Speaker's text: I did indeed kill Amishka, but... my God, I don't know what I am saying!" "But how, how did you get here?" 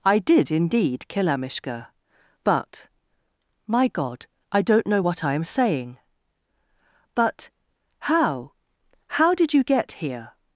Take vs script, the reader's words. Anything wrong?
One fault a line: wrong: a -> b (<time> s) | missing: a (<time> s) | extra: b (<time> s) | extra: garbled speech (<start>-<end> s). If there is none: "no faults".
no faults